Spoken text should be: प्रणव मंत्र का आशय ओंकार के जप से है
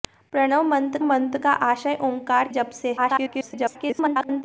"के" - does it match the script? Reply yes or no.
no